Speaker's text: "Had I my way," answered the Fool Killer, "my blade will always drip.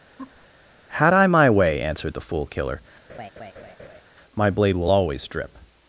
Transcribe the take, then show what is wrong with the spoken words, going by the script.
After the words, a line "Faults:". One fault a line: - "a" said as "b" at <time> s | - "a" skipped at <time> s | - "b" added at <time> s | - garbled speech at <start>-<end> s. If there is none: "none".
"Had I my way," answered the Fool Killer, "my blade will always drip.
Faults:
none